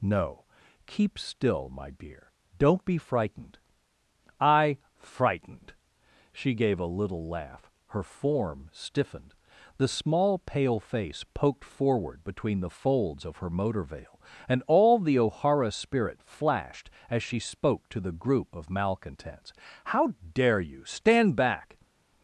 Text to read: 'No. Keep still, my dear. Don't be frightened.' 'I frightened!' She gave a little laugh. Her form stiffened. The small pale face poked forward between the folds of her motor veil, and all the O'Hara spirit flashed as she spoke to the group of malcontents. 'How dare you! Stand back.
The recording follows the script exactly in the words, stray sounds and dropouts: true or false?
true